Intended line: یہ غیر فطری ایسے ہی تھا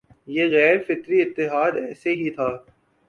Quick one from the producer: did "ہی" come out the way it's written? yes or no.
yes